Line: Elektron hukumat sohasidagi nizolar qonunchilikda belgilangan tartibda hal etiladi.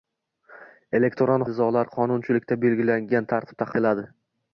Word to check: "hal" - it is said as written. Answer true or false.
false